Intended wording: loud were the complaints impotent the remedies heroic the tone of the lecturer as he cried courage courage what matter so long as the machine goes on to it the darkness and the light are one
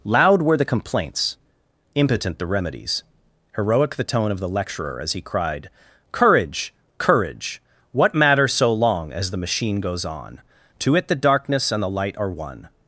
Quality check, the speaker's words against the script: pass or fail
pass